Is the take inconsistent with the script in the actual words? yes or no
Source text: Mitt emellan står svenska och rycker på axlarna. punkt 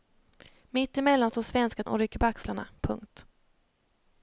no